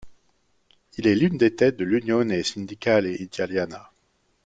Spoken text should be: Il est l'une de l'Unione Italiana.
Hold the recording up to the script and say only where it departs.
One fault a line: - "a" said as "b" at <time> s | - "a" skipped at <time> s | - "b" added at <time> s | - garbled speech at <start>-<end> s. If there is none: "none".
- "des têtes" added at 1.4 s
- "Sindacale" added at 2.4 s